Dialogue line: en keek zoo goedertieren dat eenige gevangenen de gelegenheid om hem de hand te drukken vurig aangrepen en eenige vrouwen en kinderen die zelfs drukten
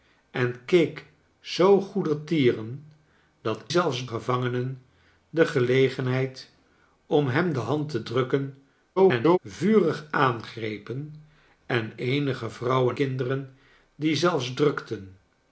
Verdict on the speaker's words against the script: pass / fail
fail